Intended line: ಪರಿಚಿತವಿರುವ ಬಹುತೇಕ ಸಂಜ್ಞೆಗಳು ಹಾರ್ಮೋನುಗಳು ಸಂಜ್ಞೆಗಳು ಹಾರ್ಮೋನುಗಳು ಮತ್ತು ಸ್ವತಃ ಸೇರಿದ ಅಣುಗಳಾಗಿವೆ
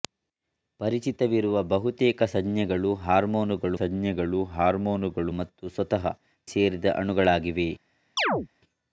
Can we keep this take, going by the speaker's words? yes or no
yes